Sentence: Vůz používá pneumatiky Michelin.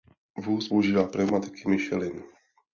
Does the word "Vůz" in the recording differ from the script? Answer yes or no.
no